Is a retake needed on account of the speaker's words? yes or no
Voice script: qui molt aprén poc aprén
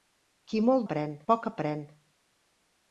no